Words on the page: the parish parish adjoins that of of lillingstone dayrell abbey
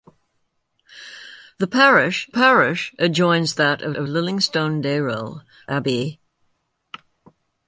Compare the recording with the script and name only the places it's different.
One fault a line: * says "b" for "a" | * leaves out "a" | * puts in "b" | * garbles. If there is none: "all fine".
all fine